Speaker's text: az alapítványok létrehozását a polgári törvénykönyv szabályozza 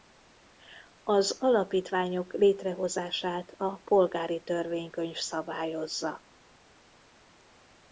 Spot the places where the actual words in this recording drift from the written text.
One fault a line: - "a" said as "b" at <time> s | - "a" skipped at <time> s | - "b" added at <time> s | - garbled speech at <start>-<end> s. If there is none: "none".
none